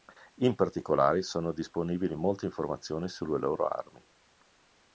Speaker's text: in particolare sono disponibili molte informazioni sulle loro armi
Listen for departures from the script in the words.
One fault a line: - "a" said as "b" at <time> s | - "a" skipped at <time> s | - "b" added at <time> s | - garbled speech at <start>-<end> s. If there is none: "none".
none